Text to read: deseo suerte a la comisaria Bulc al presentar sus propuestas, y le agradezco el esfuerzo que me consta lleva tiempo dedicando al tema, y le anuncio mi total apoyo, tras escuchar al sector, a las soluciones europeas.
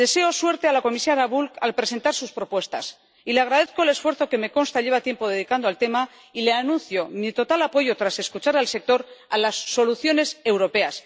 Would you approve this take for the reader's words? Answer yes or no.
yes